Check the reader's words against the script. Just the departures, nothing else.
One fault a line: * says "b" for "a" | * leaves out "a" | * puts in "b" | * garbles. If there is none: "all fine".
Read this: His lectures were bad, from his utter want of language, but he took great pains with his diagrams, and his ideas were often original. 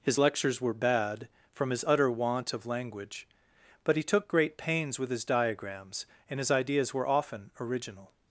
all fine